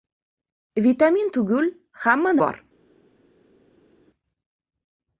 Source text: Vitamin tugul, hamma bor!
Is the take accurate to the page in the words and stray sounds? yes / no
yes